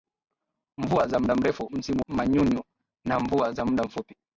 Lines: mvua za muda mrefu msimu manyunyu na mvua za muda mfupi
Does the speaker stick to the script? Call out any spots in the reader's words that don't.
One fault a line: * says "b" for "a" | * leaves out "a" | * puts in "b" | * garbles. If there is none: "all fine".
all fine